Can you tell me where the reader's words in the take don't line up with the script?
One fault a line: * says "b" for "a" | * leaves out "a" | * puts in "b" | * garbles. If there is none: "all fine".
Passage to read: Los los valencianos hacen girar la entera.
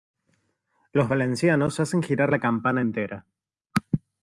* leaves out "los"
* puts in "campana"